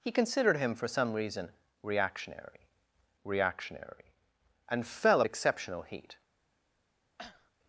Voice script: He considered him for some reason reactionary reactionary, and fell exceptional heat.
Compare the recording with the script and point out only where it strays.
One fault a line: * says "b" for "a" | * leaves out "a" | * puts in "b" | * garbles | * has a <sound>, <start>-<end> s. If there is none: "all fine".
* has a cough, 7.2-7.5 s